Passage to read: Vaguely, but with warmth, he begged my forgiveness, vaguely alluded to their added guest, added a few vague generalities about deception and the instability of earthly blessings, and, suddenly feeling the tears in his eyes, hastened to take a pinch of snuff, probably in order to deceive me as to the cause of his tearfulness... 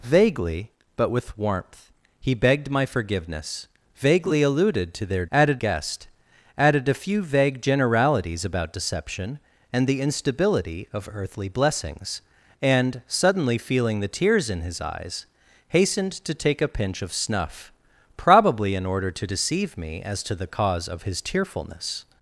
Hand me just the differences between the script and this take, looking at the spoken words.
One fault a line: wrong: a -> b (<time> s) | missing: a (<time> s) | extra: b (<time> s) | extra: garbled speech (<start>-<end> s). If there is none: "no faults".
no faults